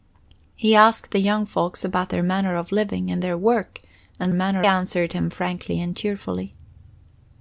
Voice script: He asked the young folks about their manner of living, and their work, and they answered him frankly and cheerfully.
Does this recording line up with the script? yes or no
no